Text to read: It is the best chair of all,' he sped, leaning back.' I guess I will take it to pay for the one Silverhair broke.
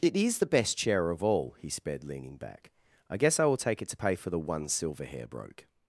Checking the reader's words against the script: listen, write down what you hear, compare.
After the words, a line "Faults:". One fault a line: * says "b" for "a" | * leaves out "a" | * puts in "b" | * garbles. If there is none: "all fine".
It is the best chair of all,' he sped, leaning back.' I guess I will take it to pay for the one Silverhair broke.
Faults:
all fine